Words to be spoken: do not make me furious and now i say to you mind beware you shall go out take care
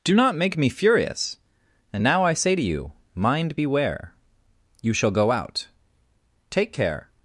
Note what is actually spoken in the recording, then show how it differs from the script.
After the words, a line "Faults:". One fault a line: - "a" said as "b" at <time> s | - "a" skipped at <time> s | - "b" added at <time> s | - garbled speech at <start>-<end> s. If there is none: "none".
do not make me furious and now i say to you mind beware you shall go out take care
Faults:
none